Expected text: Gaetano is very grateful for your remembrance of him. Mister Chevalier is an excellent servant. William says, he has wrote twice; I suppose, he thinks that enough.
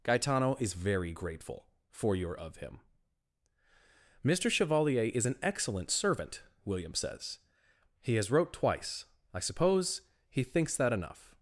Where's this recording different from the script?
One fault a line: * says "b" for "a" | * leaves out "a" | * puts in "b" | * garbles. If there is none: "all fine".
* leaves out "remembrance"